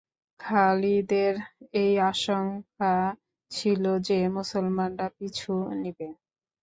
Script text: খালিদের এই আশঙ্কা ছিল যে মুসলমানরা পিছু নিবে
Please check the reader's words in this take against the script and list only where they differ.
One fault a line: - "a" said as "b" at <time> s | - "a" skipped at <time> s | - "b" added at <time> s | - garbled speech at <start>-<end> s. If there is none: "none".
none